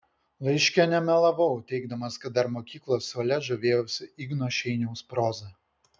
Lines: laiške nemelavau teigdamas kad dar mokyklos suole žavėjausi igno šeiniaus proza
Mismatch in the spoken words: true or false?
false